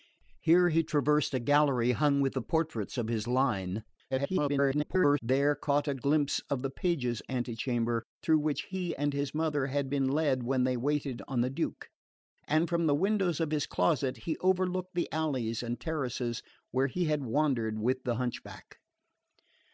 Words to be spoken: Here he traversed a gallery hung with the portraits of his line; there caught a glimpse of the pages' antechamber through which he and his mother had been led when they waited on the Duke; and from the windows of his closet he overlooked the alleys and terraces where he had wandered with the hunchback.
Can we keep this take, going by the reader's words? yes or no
no